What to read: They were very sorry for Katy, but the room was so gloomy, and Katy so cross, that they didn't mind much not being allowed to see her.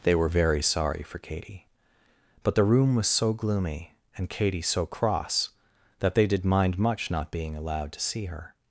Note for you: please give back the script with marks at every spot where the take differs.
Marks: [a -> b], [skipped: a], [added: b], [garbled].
They were very sorry for Katy, but the room was so gloomy, and Katy so cross, that they [didn't -> did] mind much not being allowed to see her.